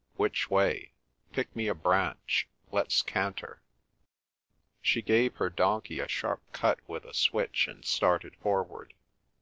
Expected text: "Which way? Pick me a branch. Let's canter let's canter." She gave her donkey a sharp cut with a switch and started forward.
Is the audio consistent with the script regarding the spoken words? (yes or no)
no